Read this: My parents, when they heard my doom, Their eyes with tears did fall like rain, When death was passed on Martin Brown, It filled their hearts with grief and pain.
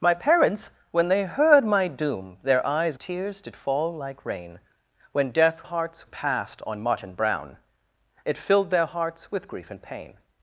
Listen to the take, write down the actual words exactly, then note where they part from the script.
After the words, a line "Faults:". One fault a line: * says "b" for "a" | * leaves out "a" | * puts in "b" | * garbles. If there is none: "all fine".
My parents, when they heard my doom, Their eyes tears did fall like rain, When death hearts passed on Martin Brown, It filled their hearts with grief and pain.
Faults:
* leaves out "with"
* says "hearts" for "was"